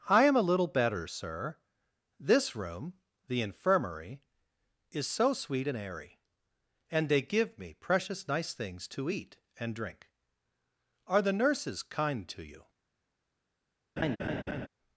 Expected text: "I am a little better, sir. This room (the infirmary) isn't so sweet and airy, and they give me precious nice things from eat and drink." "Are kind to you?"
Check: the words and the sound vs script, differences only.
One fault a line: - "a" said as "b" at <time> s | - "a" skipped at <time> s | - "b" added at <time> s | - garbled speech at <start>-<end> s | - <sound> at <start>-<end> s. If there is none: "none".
- "isn't" said as "is" at 4.9 s
- "from" said as "to" at 8.9 s
- "the nurses" added at 11.2 s
- laugh at 14.0-14.7 s